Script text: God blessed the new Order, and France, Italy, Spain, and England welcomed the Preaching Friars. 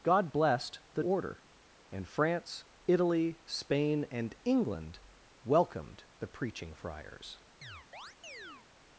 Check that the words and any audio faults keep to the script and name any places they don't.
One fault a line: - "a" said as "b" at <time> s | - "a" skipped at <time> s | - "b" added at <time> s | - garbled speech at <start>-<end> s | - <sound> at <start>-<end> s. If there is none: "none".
- "new" skipped at 1.0 s
- chirp at 7.6-8.7 s